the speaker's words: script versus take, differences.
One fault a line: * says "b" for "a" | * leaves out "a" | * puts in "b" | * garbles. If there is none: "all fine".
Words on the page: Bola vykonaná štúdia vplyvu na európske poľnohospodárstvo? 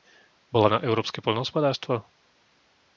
* leaves out "vykonaná štúdia vplyvu"